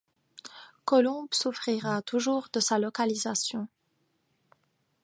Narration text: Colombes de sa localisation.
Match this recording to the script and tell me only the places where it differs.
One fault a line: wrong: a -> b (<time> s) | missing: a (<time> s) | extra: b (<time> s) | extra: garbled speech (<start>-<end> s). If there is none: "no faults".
extra: souffrira toujours (1.3 s)